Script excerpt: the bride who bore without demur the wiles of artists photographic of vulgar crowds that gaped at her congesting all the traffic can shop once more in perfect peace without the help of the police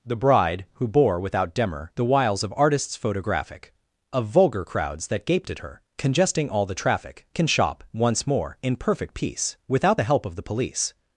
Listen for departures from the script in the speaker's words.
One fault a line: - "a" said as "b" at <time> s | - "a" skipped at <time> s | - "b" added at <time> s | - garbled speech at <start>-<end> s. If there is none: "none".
none